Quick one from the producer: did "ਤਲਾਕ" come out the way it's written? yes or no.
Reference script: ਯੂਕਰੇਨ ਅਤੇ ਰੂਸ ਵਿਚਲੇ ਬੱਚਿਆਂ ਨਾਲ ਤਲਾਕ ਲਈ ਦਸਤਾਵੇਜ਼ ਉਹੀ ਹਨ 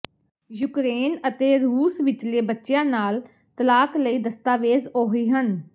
yes